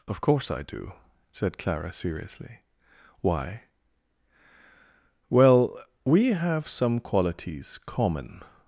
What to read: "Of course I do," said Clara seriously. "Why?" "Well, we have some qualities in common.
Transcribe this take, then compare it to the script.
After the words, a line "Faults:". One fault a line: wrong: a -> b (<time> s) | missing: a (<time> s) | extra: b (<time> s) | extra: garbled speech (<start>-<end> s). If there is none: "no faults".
"Of course I do," said Clara seriously. "Why?" "Well, we have some qualities common.
Faults:
missing: in (7.8 s)